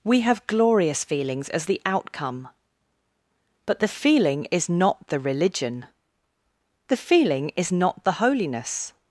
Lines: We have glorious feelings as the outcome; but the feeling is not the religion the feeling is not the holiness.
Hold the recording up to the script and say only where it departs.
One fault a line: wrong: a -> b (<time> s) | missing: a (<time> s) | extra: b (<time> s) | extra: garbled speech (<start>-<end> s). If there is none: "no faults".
no faults